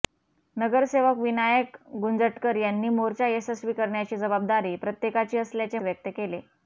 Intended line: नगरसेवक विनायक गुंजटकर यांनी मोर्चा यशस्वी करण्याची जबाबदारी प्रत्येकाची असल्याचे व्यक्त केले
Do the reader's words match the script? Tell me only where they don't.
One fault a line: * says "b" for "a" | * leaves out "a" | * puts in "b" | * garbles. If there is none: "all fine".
all fine